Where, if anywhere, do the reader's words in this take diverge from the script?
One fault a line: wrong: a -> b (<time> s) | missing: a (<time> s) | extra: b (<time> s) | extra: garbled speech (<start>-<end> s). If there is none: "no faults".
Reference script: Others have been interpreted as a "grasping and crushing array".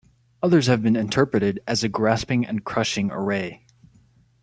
no faults